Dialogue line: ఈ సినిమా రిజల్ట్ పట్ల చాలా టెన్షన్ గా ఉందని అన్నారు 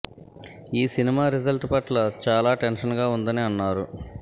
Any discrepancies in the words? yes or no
no